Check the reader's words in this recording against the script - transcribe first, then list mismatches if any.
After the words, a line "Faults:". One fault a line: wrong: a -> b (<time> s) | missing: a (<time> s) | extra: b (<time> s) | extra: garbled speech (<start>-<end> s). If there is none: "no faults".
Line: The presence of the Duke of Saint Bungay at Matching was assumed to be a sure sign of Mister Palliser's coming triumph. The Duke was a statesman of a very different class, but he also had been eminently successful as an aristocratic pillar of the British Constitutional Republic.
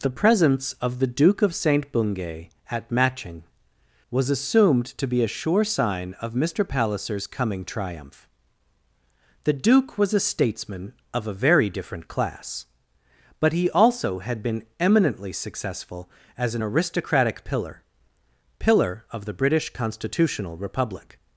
The presence of the Duke of Saint Bungay at Matching was assumed to be a sure sign of Mister Palliser's coming triumph. The Duke was a statesman of a very different class, but he also had been eminently successful as an aristocratic pillar pillar of the British Constitutional Republic.
Faults:
extra: pillar (18.6 s)